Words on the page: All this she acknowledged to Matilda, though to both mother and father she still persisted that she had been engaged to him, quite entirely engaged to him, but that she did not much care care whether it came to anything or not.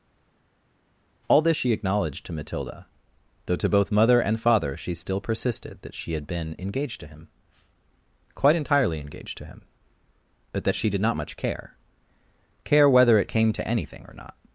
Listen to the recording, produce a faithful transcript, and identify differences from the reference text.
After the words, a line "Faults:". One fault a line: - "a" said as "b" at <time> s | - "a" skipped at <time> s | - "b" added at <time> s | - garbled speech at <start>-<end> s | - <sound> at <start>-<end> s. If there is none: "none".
All this she acknowledged to Matilda, though to both mother and father she still persisted that she had been engaged to him, quite entirely engaged to him, but that she did not much care care whether it came to anything or not.
Faults:
none